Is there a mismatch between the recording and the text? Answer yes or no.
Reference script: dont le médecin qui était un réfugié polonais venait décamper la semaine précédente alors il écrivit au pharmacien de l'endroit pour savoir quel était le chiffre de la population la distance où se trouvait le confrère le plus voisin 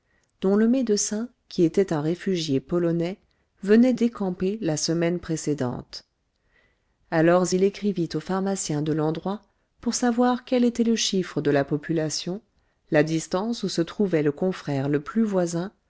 no